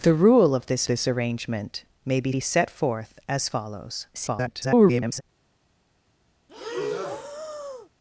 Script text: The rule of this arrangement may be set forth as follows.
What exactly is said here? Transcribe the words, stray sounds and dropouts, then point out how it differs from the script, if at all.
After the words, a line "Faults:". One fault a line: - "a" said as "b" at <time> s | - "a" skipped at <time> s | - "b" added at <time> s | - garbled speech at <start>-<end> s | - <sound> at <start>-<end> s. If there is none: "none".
The rule of this this arrangement may be be set forth as follows. [garbled]
Faults:
- "this" added at 0.8 s
- "be" added at 2.3 s
- garbled speech at 4.1-5.2 s
- breath at 6.5-7.9 s